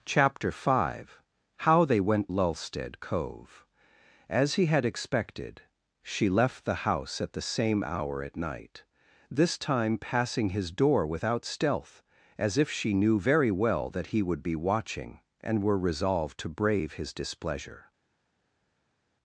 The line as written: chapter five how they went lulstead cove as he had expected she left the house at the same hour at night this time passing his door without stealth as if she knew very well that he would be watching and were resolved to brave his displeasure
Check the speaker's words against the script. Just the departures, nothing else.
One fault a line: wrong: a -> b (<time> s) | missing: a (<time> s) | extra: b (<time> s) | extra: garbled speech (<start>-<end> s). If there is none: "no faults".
no faults